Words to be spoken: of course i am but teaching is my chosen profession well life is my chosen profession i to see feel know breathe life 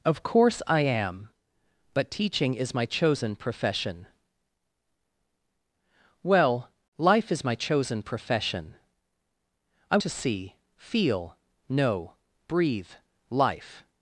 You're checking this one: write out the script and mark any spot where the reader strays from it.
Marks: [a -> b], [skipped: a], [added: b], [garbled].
of course i am but teaching is my chosen profession well life is my chosen profession i to see feel know breathe life